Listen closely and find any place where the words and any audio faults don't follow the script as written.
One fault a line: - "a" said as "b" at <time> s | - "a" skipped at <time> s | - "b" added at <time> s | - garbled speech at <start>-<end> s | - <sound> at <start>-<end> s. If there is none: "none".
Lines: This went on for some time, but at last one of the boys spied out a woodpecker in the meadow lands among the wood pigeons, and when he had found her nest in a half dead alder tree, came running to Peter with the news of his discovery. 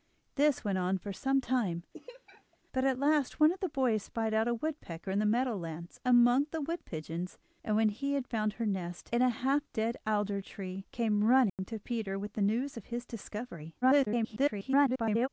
- laugh at 1.9-2.6 s
- dropout at 11.5-11.6 s
- garbled speech at 13.8-15.3 s